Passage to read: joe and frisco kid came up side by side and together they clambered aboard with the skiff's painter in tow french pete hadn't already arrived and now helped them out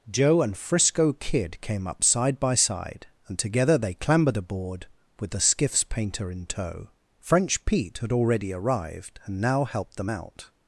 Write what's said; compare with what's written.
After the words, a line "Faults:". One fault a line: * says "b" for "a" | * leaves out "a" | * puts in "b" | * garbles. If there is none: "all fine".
joe and frisco kid came up side by side and together they clambered aboard with the skiff's painter in tow french pete had already arrived and now helped them out
Faults:
* says "had" for "hadn't"